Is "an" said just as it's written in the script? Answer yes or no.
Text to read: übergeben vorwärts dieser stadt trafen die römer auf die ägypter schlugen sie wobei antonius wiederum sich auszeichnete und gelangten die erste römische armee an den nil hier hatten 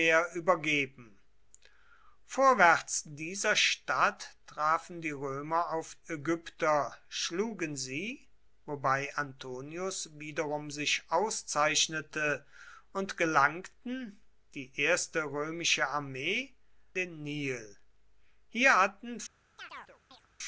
no